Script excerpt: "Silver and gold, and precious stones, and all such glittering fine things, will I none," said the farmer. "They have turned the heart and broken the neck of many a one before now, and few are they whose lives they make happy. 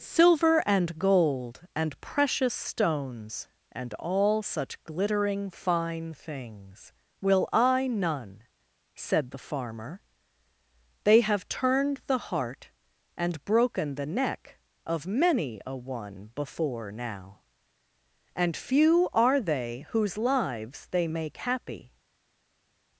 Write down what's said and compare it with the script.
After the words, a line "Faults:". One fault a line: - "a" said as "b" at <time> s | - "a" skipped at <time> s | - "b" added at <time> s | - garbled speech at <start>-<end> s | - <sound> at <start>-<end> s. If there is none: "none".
"Silver and gold, and precious stones, and all such glittering fine things, will I none," said the farmer. "They have turned the heart and broken the neck of many a one before now, and few are they whose lives they make happy.
Faults:
none